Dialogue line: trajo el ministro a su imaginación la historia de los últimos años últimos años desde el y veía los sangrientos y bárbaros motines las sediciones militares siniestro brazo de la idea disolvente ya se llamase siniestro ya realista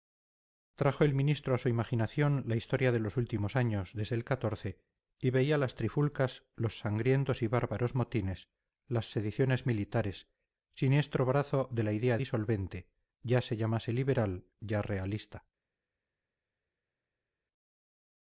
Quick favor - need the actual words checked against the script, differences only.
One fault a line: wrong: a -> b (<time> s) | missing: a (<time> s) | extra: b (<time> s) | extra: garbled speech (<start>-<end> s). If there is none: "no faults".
missing: últimos años (3.9 s)
extra: las trifulcas (5.6 s)
wrong: siniestro -> liberal (13.9 s)